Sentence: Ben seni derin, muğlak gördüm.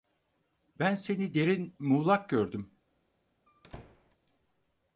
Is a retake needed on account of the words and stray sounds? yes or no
yes